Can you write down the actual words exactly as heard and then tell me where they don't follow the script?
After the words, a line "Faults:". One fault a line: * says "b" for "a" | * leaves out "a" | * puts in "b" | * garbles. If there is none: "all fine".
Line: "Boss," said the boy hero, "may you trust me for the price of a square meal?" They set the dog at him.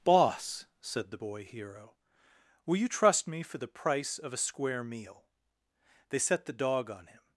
"Boss," said the boy hero, "will you trust me for the price of a square meal?" They set the dog on him.
Faults:
* says "will" for "may"
* says "on" for "at"